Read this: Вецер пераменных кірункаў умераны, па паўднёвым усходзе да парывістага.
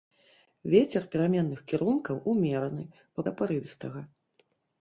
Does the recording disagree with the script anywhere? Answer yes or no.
yes